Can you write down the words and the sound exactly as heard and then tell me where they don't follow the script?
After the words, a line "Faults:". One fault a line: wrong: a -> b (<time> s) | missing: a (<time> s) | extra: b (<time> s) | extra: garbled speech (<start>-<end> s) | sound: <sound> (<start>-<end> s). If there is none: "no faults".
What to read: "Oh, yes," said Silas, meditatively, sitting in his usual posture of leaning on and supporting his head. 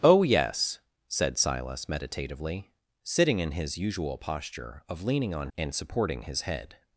"Oh, yes," said Silas, meditatively, sitting in his usual posture of leaning on and supporting his head.
Faults:
no faults